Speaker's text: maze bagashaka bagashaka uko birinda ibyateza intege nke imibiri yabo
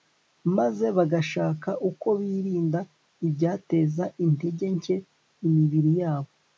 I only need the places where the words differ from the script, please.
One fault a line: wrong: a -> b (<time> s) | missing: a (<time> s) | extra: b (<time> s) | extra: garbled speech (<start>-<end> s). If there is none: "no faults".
missing: bagashaka (1.7 s)